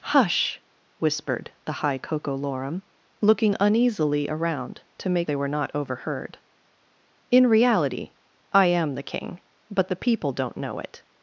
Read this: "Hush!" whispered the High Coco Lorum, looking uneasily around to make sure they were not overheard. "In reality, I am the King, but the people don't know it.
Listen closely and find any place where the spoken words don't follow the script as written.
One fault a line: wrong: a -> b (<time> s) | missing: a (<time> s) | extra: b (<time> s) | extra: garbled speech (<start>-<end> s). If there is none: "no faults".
missing: sure (5.3 s)